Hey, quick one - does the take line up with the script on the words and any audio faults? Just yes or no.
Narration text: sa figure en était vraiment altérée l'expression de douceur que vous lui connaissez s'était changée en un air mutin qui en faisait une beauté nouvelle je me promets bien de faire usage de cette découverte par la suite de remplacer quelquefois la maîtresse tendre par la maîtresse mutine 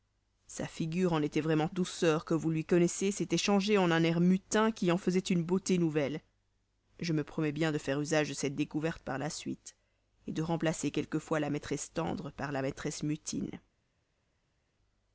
no